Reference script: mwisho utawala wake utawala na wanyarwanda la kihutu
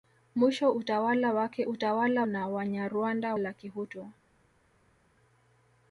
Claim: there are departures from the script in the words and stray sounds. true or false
false